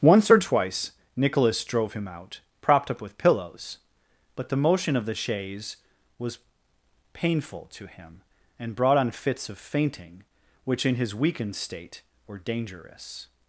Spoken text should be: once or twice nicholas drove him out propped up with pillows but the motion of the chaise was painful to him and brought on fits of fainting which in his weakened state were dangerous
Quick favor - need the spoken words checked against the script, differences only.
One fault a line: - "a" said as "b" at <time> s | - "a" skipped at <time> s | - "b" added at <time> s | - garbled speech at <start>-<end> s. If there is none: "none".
none